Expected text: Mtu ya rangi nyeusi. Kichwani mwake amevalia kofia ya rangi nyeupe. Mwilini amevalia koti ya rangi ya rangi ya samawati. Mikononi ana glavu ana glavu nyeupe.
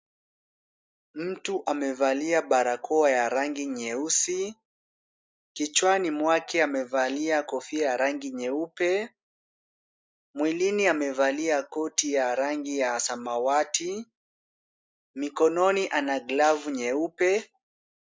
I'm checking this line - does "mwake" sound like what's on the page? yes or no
yes